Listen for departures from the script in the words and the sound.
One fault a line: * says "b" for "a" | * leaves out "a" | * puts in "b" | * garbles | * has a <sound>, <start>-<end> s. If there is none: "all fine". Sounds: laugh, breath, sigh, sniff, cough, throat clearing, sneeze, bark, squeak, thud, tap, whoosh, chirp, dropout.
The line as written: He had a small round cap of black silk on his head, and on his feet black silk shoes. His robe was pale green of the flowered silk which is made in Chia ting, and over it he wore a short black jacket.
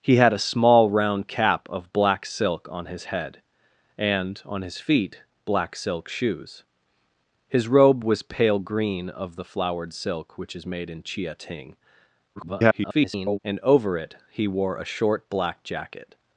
* garbles